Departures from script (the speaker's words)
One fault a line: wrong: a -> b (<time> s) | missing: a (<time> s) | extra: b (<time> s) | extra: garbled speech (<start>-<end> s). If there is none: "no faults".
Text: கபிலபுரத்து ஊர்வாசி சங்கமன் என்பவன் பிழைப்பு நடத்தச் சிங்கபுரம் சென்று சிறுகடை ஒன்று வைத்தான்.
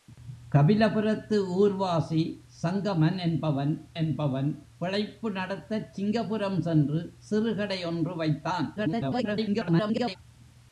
extra: என்பவன் (3.9 s)
extra: garbled speech (8.8-10.2 s)